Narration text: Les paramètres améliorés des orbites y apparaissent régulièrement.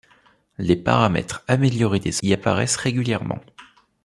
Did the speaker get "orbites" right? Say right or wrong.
wrong